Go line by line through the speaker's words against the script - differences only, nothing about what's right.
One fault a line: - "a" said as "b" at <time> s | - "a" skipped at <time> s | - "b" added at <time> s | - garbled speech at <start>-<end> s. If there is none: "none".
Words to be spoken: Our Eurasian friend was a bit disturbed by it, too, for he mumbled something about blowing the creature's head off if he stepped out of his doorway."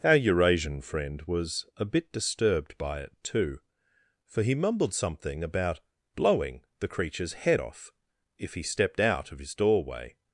none